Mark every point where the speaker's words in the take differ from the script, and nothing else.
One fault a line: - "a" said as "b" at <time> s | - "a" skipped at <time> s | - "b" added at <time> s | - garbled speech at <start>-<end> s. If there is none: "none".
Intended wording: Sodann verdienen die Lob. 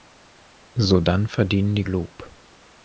none